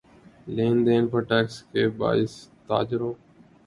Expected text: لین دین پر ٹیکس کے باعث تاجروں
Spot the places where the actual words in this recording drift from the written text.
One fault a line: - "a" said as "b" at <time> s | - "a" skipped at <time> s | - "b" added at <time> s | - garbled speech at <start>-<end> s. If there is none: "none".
none